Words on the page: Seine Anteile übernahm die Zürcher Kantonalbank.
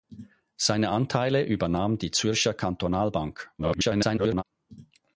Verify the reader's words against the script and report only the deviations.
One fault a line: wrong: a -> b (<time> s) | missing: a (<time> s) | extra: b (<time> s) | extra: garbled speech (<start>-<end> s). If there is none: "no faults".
extra: garbled speech (3.6-4.4 s)